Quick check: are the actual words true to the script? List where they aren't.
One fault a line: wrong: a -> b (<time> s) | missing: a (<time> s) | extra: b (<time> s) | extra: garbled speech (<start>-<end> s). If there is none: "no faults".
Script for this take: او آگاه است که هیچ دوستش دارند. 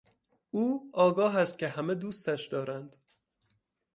wrong: هیچ -> همه (1.7 s)